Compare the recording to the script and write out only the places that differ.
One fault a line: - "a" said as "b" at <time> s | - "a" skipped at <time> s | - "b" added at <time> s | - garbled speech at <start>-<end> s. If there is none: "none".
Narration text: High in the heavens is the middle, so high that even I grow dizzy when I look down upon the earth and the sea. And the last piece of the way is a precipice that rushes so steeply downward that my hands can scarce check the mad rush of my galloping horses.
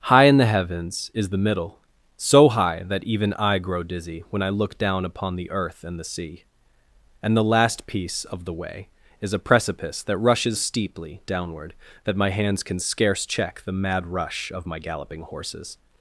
- "so" skipped at 10.6 s